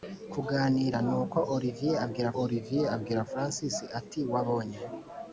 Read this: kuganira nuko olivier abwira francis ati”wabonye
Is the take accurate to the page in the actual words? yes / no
no